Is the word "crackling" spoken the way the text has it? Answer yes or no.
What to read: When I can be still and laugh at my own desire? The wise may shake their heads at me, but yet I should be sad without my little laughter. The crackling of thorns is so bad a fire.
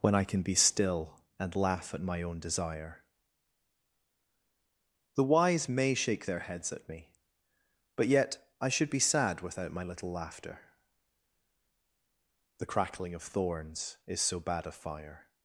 yes